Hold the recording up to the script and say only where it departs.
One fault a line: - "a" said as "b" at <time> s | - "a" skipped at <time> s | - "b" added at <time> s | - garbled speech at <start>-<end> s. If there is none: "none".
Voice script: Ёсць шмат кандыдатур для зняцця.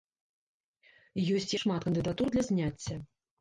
none